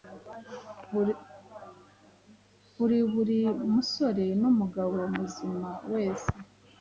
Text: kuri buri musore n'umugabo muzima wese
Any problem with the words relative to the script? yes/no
no